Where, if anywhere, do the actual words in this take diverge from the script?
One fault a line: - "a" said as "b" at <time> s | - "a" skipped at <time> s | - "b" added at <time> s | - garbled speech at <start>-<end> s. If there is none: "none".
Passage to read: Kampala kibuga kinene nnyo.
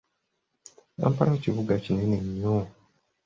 none